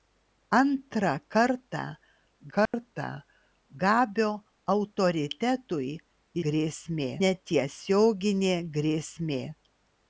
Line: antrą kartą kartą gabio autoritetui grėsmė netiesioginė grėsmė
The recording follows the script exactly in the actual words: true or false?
true